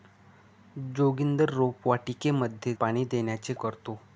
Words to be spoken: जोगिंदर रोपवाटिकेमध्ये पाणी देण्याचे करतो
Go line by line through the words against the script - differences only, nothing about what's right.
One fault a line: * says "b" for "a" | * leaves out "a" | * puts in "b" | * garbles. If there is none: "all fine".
all fine